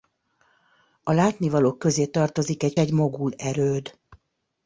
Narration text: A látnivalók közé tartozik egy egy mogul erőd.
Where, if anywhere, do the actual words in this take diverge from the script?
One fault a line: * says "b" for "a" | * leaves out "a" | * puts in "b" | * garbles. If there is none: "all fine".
all fine